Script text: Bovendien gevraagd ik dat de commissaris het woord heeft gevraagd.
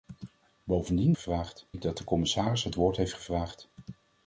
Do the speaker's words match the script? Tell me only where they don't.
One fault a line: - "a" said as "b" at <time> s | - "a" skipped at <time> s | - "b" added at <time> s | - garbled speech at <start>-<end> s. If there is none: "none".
none